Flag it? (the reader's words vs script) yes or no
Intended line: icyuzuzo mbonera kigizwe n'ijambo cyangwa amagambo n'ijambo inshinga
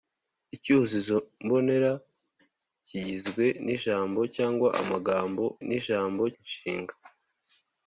no